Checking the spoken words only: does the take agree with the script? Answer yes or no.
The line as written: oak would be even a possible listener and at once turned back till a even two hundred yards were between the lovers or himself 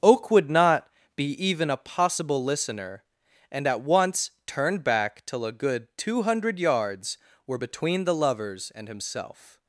no